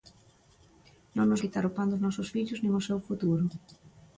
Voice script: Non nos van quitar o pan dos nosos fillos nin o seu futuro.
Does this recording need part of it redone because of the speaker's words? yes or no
yes